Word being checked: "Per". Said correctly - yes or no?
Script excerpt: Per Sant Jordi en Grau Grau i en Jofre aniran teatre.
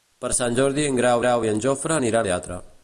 yes